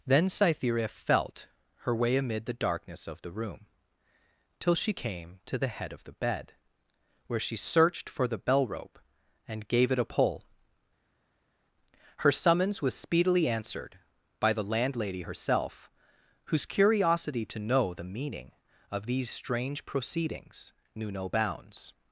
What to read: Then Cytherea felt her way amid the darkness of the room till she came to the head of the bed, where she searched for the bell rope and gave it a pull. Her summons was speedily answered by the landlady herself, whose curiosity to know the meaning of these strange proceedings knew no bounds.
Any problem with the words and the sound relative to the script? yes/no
no